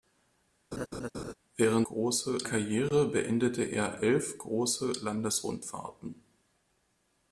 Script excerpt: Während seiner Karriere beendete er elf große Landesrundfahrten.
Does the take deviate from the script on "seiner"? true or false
true